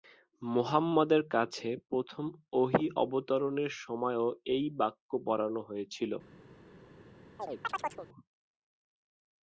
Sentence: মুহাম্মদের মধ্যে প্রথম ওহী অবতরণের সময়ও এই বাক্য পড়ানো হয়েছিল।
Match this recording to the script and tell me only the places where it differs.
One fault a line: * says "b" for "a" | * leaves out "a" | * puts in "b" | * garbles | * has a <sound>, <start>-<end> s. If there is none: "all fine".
* says "কাছে" for "মধ্যে"
* has a chirp, 7.4-8.1 s